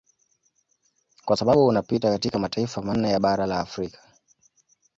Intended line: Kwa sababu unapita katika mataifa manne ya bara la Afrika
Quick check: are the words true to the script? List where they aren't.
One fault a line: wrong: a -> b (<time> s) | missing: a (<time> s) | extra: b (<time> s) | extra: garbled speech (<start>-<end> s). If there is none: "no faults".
no faults